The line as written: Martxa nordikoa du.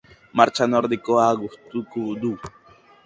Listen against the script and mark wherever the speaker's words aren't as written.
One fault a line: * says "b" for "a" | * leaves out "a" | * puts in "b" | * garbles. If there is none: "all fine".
* puts in "gustuko"